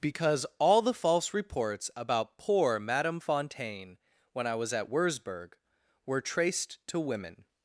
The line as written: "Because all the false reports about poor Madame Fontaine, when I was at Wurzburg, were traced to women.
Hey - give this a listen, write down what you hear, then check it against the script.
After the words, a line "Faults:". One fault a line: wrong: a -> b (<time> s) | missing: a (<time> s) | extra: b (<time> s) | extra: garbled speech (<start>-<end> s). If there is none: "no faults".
"Because all the false reports about poor Madame Fontaine, when I was at Wurzburg, were traced to women.
Faults:
no faults